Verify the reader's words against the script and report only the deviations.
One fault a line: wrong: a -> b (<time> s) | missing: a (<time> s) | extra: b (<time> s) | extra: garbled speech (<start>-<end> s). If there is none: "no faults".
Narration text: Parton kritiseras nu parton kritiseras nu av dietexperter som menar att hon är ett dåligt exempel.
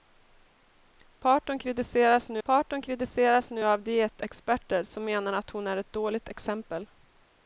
no faults